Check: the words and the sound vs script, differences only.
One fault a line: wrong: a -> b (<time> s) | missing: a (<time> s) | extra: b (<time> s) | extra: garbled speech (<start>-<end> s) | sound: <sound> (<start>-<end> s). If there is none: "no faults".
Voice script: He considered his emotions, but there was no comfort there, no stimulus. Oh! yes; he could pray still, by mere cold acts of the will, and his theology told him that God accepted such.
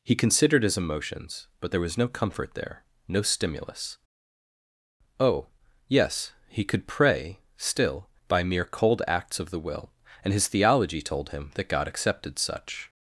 no faults